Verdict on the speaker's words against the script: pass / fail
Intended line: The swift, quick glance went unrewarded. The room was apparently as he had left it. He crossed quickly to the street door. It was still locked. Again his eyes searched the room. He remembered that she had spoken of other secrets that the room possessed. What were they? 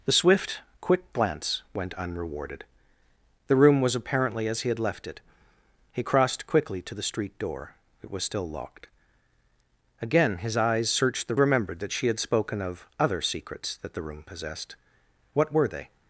fail